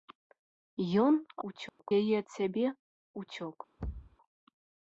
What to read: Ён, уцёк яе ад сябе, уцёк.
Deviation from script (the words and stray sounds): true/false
true